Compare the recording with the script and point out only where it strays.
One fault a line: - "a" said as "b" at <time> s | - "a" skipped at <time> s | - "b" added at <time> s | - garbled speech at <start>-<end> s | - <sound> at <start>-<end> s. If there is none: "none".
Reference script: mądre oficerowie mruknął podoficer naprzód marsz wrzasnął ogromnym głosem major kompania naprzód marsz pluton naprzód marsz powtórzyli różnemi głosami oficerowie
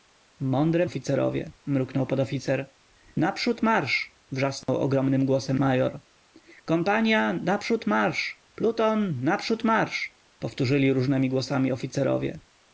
- dropout at 4.6-4.7 s